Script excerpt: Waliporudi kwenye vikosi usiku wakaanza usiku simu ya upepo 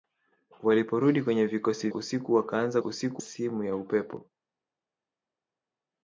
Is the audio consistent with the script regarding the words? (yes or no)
yes